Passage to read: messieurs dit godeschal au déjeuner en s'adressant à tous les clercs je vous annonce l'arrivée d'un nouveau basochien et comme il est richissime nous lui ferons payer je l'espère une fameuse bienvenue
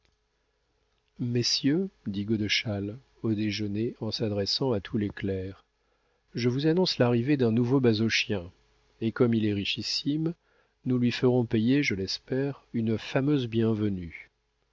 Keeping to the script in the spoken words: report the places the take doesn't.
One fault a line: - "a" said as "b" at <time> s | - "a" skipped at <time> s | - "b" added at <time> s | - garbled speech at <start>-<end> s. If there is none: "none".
none